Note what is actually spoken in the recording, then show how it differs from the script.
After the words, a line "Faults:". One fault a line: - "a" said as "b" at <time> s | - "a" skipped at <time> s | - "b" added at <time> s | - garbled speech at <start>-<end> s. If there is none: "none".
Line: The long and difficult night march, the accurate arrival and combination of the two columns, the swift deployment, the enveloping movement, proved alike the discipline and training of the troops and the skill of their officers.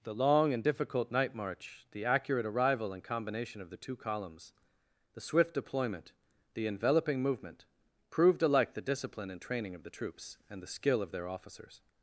The long and difficult night march, the accurate arrival and combination of the two columns, the swift deployment, the enveloping movement, proved alike the discipline and training of the troops and the skill of their officers.
Faults:
none